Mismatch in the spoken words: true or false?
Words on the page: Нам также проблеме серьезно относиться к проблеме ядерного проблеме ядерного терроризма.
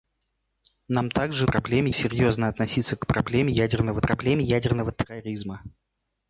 false